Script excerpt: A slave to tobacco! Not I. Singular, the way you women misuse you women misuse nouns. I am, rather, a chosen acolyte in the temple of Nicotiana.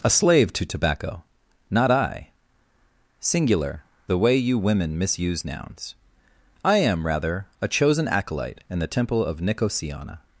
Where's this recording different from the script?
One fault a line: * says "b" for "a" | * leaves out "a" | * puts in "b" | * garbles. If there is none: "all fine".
* leaves out "you women misuse"